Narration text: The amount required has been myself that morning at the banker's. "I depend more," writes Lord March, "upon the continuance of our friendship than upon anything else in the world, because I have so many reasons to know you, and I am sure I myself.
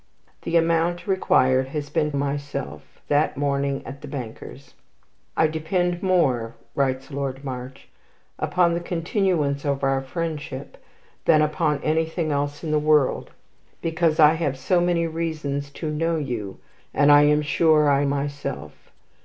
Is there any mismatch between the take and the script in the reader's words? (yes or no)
no